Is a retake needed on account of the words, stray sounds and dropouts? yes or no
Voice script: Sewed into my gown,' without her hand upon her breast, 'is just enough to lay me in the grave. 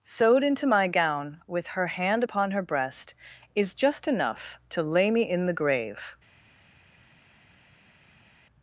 yes